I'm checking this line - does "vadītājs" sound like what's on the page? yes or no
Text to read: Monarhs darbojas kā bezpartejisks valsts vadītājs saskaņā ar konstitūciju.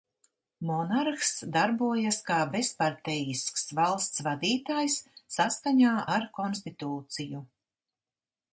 yes